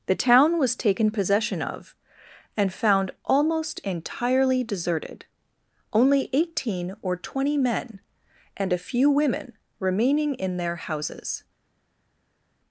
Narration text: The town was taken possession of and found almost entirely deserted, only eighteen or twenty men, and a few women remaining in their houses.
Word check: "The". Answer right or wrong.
right